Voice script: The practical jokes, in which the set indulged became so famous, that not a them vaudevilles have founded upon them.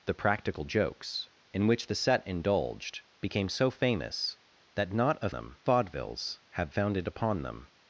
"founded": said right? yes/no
yes